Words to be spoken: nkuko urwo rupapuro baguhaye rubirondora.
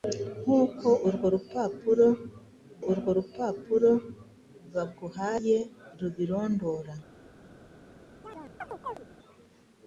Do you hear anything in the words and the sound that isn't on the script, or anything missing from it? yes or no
yes